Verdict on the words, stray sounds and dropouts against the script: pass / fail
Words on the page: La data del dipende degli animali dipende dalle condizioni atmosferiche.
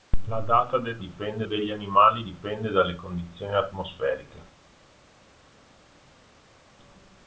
pass